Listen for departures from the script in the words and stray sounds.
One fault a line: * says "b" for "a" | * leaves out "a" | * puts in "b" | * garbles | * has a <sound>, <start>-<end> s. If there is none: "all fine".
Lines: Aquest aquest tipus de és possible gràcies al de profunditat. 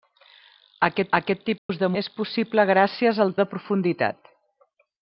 * has a dropout, 1.6-1.7 s